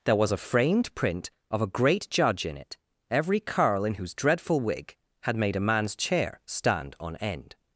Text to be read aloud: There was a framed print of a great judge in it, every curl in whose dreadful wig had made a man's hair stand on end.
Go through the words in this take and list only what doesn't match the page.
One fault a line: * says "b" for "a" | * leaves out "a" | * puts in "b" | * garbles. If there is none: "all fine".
* says "chair" for "hair"